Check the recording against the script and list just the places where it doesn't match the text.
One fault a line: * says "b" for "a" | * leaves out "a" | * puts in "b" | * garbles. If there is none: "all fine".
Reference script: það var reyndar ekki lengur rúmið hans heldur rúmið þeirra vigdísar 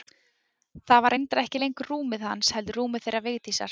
all fine